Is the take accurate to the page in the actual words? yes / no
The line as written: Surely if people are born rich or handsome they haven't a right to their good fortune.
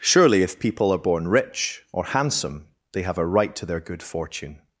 no